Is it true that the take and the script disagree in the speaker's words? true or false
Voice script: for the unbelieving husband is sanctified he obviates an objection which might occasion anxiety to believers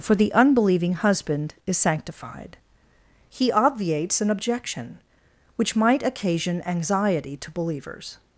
false